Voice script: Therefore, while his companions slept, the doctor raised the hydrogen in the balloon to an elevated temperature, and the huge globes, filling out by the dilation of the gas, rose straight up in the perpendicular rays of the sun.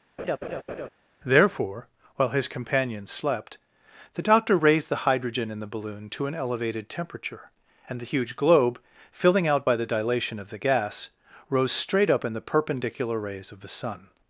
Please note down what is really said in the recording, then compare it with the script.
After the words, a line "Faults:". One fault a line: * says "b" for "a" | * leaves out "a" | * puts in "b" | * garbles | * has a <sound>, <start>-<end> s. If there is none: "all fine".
Therefore, while his companions slept, the doctor raised the hydrogen in the balloon to an elevated temperature, and the huge globe, filling out by the dilation of the gas, rose straight up in the perpendicular rays of the sun.
Faults:
* has a laugh, 0.2-0.9 s
* says "globe" for "globes"